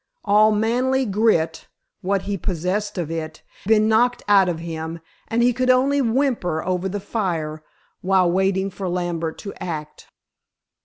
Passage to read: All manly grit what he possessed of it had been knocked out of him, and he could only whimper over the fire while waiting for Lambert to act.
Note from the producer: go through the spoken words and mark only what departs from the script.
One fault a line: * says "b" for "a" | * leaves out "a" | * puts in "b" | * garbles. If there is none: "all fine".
* leaves out "had"